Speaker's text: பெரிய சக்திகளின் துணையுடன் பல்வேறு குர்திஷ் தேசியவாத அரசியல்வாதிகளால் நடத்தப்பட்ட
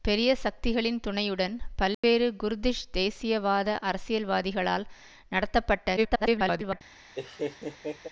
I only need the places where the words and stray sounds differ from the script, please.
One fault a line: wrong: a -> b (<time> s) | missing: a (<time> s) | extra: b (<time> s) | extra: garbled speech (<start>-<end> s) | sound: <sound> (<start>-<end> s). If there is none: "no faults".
sound: dropout (1.9-2.0 s)
extra: garbled speech (6.0-6.8 s)
sound: laugh (7.2-8.1 s)